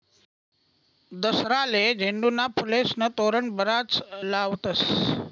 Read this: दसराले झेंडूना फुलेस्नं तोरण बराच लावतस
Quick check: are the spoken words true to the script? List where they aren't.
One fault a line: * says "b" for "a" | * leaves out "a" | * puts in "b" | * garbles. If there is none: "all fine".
all fine